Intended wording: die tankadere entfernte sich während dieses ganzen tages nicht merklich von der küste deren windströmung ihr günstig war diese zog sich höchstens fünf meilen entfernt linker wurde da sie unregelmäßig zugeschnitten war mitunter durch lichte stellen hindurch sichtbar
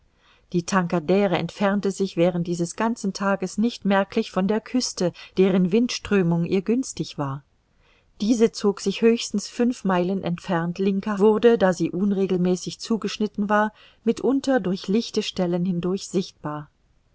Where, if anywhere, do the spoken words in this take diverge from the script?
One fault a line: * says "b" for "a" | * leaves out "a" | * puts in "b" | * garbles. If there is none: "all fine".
all fine